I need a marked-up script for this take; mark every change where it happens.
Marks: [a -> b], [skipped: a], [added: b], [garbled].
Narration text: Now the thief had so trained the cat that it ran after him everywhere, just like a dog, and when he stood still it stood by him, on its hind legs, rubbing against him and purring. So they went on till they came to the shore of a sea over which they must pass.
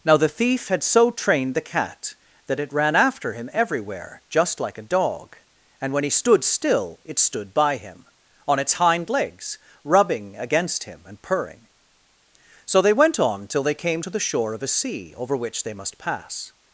Now the thief had so trained the cat that it ran after him everywhere, just like a dog, and when he stood still it stood by him, on its hind legs, rubbing against him and purring. So they went on till they came to the shore of a sea over which they must pass.